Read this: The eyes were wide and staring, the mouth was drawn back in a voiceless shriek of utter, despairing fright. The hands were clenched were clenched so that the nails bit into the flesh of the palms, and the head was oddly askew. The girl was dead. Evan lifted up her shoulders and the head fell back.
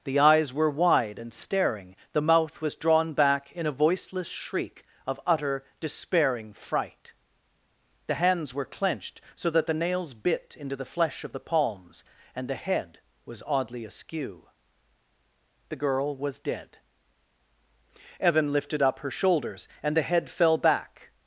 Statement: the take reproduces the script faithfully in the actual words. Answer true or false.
false